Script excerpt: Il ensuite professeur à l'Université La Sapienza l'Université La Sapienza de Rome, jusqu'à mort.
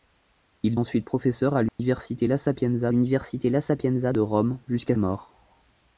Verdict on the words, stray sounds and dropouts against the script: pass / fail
fail